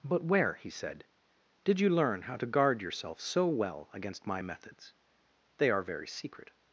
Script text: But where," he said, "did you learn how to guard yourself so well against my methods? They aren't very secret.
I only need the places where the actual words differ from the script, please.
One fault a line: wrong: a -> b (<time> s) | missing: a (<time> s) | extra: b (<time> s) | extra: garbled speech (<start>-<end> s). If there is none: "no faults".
wrong: aren't -> are (5.7 s)